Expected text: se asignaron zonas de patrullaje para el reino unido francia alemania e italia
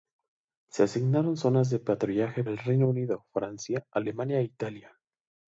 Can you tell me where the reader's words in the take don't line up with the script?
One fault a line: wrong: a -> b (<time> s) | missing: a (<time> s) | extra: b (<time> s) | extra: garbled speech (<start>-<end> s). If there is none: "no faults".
missing: para (2.4 s)